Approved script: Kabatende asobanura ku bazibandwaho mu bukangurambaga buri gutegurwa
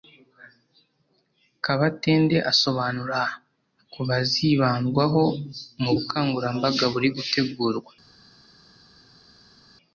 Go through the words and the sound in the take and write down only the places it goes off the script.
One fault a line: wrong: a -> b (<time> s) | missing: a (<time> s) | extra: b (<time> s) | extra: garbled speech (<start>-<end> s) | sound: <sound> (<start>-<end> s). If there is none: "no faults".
no faults